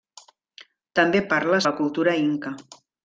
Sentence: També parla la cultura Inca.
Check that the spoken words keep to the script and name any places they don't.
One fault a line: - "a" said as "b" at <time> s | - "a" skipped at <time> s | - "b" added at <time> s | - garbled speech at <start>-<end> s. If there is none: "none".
none